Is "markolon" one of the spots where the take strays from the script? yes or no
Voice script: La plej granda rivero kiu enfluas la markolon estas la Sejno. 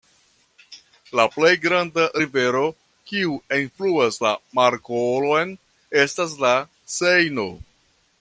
no